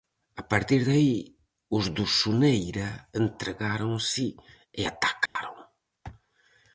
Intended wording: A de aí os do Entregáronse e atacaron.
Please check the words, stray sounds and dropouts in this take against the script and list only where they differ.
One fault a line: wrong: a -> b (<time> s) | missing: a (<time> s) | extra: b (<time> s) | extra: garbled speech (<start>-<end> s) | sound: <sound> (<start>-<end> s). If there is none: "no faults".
extra: partir (0.5 s)
extra: Soneira (2.2 s)
sound: dropout (5.3-5.4 s)